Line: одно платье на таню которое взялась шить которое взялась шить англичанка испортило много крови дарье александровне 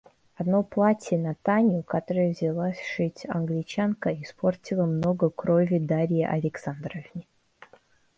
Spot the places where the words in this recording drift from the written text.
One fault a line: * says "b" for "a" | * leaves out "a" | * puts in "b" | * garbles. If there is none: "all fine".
* leaves out "которое взялась шить"